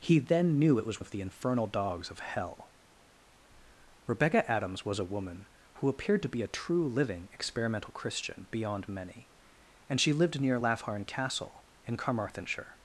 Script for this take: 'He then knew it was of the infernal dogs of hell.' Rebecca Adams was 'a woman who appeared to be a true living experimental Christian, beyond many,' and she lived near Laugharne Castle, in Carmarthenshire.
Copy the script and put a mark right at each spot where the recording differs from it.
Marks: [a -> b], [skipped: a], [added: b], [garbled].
'He then knew it was of the infernal dogs of hell.' Rebecca Adams was 'a woman who appeared to be a true living experimental Christian, beyond many,' and she lived near Laugharne Castle, in Carmarthenshire.